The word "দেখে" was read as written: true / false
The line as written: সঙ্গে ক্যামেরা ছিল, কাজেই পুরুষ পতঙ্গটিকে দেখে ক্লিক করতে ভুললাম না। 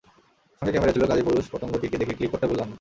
true